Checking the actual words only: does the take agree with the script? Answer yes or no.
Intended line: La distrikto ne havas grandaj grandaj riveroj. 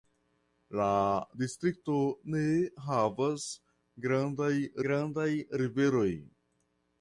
yes